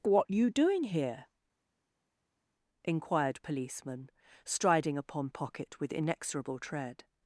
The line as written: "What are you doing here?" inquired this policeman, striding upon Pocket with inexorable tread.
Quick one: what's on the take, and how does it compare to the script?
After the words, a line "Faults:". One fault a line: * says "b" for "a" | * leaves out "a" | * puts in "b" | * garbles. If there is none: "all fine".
"What you doing here?" inquired policeman, striding upon Pocket with inexorable tread.
Faults:
* leaves out "are"
* leaves out "this"